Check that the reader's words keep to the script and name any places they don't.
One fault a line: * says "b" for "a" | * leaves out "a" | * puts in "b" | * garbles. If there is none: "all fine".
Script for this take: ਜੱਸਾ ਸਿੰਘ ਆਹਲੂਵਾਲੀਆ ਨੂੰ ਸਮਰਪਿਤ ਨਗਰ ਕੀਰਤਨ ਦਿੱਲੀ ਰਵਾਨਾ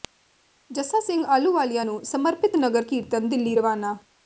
all fine